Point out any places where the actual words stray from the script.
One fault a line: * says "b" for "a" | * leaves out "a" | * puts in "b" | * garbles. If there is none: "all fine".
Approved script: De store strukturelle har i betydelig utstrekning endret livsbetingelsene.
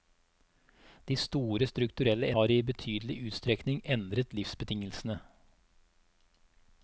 all fine